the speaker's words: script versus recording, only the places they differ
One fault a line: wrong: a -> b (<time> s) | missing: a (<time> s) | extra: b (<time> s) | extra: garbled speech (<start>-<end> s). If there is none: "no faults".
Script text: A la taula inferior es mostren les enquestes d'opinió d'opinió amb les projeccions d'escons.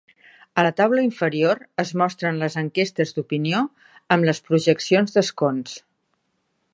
missing: d'opinió (3.6 s)